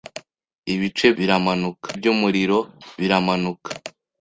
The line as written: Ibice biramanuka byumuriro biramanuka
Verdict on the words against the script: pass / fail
pass